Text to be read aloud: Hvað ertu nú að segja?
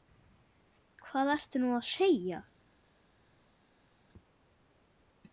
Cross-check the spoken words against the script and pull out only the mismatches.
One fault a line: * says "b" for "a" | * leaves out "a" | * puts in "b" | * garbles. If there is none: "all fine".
all fine